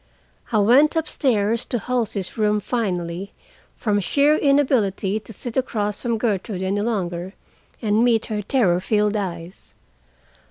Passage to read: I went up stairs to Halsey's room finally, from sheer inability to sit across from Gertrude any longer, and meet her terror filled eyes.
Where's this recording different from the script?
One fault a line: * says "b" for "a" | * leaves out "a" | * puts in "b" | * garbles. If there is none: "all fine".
all fine